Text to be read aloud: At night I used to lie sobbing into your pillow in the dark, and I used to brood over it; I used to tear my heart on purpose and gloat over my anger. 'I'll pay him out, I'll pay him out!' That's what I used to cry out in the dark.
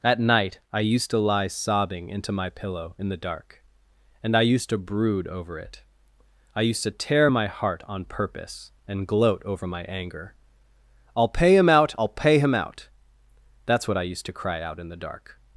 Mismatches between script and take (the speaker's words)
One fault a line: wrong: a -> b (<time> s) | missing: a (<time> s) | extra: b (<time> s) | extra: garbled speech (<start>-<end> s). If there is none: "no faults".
wrong: your -> my (2.3 s)